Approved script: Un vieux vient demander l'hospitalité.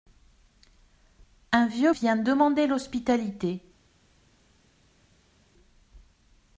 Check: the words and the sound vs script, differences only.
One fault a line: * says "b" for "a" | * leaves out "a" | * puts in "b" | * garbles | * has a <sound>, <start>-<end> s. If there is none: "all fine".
all fine